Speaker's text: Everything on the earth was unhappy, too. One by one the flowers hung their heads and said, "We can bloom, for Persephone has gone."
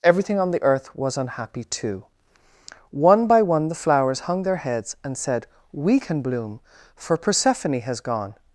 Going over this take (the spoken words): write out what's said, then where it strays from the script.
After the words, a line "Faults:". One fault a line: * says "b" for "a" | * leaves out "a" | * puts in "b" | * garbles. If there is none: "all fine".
Everything on the earth was unhappy, too. One by one the flowers hung their heads and said, "We can bloom, for Persephone has gone."
Faults:
all fine